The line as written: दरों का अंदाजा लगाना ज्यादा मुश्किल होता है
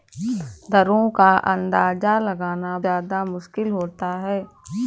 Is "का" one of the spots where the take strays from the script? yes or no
no